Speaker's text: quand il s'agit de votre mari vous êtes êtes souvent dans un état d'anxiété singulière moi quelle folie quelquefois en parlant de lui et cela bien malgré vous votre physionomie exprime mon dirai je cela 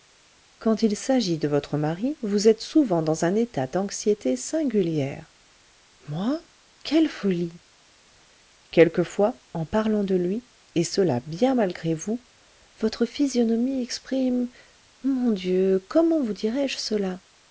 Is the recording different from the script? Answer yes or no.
yes